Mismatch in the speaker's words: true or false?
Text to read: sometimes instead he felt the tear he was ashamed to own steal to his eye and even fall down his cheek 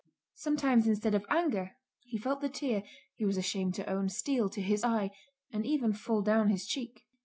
true